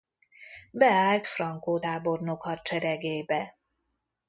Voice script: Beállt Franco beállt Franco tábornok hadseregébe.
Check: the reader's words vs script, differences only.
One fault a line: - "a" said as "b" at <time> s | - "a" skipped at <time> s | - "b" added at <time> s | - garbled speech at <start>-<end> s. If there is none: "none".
- "beállt Franco" skipped at 1.8 s